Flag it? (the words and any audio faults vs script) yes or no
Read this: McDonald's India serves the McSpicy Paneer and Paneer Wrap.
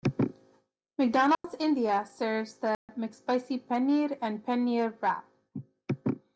yes